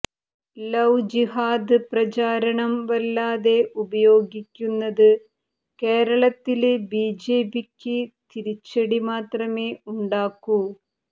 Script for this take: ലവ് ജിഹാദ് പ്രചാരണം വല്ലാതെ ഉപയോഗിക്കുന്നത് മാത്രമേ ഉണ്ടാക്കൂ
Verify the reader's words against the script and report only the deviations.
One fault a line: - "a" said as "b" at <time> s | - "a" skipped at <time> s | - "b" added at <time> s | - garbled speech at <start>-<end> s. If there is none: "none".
- "കേരളത്തില് ബിജെപിക്ക് തിരിച്ചടി" added at 5.8 s